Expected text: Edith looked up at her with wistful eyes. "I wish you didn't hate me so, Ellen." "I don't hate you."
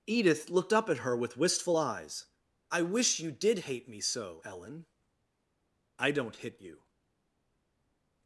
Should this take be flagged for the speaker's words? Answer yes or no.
yes